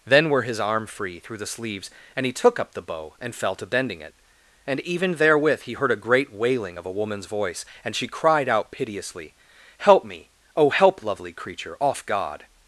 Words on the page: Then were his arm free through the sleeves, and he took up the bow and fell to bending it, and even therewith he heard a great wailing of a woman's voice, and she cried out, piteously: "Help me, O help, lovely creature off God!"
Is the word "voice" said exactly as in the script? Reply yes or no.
yes